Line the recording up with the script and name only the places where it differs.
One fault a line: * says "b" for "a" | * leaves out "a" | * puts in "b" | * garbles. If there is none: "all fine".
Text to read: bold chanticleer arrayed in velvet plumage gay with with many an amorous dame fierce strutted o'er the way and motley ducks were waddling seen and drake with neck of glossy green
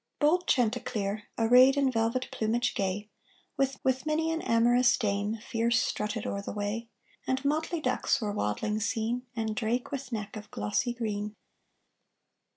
all fine